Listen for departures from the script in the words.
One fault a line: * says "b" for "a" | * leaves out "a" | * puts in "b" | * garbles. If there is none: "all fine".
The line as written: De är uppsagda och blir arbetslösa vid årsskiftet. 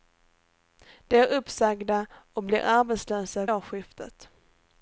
* leaves out "vid"